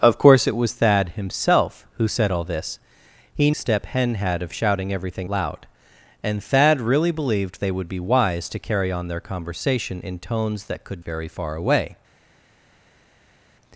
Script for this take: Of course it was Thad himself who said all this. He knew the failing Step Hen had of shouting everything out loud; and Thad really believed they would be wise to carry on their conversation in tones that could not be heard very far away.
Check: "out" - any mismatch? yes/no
yes